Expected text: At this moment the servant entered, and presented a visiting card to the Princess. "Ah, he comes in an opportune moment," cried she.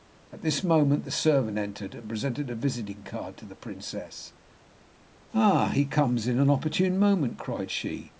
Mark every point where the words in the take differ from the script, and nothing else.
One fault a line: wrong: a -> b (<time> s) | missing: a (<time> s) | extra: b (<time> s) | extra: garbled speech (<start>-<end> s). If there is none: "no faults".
no faults